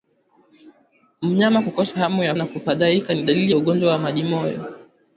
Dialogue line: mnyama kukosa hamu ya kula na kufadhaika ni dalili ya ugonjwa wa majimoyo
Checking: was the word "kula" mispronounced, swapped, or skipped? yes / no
yes